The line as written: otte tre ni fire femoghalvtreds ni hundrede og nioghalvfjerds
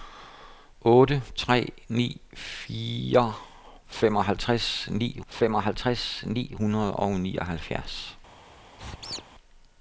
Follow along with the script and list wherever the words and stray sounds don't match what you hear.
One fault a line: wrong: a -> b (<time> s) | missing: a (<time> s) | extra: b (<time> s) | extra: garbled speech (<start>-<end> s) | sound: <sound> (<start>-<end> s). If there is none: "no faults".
extra: femoghalvtreds ni (5.3 s)
sound: squeak (8.8-9.2 s)